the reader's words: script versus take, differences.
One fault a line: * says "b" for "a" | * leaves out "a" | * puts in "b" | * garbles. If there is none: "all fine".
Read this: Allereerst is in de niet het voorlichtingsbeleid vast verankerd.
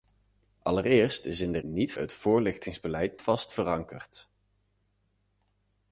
all fine